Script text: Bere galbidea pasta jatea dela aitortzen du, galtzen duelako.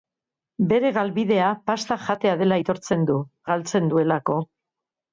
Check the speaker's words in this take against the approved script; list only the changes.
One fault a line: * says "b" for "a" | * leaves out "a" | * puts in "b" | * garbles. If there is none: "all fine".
all fine